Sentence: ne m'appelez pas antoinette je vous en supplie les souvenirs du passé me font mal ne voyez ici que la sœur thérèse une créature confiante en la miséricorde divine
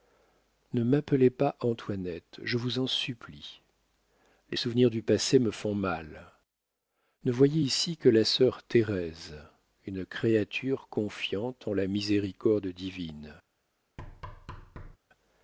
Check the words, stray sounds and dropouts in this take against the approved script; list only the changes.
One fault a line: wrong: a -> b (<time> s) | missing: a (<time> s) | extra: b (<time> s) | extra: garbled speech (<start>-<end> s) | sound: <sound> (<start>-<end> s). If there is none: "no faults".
sound: thud (14.0-15.0 s)